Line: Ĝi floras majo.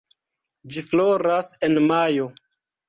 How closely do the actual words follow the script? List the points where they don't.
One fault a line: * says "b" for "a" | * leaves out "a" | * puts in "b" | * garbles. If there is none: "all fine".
* puts in "en"